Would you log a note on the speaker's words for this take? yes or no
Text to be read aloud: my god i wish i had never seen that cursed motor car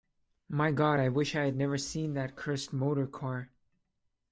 no